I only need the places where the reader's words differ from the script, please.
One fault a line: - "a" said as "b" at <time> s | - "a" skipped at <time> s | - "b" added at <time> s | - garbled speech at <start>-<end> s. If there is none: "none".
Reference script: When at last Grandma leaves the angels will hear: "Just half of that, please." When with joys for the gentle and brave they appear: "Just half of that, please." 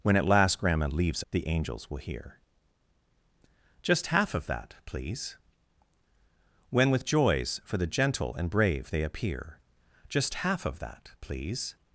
none